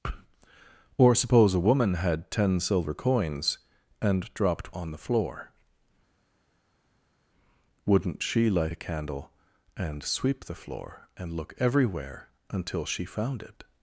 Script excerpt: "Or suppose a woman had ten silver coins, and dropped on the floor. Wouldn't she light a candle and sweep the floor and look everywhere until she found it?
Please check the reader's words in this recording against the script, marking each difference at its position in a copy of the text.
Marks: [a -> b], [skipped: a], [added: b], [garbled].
"Or suppose a woman had ten silver coins, and dropped on the floor. Wouldn't she light a candle and sweep the floor and look everywhere until she found it?